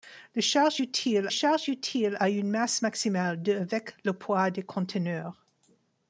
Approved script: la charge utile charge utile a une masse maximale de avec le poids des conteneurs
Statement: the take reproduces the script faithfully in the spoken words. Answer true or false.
true